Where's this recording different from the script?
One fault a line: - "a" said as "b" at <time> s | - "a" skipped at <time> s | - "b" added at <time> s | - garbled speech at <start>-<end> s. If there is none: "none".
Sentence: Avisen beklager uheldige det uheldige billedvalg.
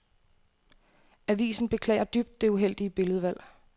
- "uheldige" said as "dybt" at 2.0 s